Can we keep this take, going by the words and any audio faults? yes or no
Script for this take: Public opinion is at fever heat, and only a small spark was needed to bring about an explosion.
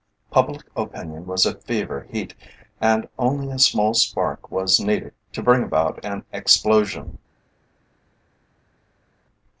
no